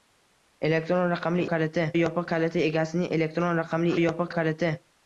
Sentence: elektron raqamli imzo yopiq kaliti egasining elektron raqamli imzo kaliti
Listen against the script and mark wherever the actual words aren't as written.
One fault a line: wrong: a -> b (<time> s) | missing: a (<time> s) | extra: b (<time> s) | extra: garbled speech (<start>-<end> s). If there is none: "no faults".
wrong: imzo -> kaliti (1.5 s)
wrong: imzo -> yopiq (4.0 s)